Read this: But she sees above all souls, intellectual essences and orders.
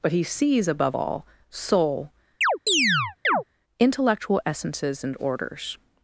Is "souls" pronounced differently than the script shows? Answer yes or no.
yes